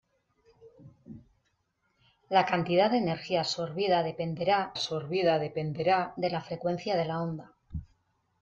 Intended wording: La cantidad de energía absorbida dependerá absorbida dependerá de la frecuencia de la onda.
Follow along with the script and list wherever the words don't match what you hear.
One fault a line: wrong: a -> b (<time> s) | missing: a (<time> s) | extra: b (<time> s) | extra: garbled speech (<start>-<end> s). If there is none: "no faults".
no faults